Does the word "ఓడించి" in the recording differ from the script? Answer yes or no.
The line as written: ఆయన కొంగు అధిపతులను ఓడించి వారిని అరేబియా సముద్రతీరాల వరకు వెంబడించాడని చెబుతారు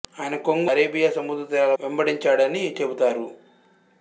yes